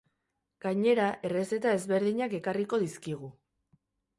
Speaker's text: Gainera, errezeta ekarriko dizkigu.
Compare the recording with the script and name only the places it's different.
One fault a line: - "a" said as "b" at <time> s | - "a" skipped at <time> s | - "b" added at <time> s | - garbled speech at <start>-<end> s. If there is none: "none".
- "ezberdinak" added at 1.8 s